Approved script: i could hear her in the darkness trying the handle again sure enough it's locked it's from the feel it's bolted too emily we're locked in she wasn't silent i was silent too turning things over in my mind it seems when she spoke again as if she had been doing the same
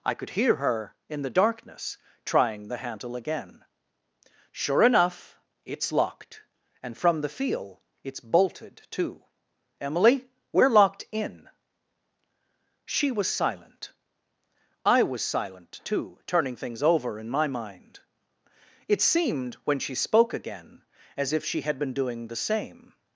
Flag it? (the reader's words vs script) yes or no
yes